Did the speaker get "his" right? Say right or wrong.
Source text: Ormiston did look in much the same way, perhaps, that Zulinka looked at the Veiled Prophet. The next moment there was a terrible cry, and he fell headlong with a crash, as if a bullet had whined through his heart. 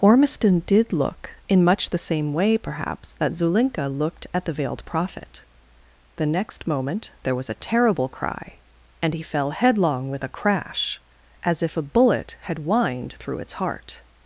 wrong